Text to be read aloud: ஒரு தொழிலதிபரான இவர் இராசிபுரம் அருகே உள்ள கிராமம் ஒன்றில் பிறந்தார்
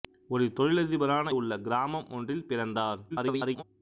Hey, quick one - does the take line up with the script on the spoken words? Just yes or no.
no